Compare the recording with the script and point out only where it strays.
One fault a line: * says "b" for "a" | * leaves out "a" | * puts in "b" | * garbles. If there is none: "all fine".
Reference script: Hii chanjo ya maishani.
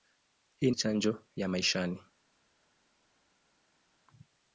all fine